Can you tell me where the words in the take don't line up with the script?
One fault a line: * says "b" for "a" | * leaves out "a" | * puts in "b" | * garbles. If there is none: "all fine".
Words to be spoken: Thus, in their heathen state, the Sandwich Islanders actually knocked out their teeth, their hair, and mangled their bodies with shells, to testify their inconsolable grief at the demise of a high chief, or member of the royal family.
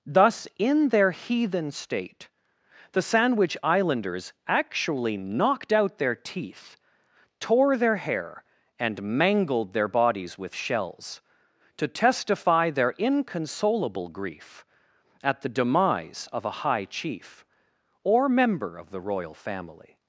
* puts in "tore"